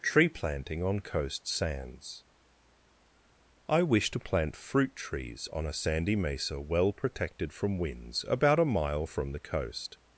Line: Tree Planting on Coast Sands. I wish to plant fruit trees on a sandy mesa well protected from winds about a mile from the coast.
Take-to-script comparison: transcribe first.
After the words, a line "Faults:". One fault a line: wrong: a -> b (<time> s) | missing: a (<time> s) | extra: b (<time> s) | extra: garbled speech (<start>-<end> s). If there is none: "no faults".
Tree Planting on Coast Sands. I wish to plant fruit trees on a sandy mesa well protected from winds about a mile from the coast.
Faults:
no faults